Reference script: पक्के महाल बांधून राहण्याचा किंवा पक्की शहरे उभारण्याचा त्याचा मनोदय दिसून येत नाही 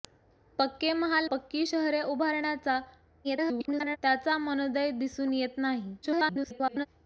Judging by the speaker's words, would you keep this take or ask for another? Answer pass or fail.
fail